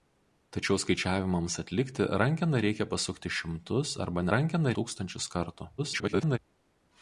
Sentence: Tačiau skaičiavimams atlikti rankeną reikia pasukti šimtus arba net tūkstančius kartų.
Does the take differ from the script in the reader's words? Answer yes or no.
yes